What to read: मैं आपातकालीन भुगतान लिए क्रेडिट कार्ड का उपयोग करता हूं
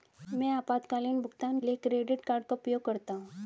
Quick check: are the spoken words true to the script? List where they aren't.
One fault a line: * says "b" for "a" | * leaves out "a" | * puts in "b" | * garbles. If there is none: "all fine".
all fine